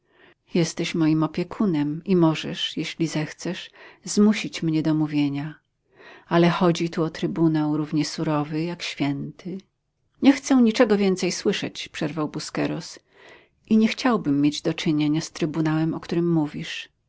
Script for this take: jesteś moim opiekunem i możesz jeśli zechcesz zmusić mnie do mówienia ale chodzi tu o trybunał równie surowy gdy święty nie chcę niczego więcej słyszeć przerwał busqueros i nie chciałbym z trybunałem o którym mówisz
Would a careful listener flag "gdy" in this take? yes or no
yes